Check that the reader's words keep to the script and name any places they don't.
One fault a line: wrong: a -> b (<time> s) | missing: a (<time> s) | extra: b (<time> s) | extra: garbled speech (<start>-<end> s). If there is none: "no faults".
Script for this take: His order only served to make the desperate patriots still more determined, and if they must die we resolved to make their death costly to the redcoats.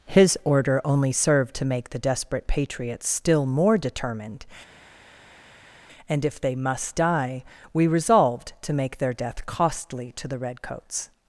no faults